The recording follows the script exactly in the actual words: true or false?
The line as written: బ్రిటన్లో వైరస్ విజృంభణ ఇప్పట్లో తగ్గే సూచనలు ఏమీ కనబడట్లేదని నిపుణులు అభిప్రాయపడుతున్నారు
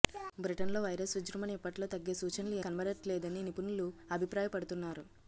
false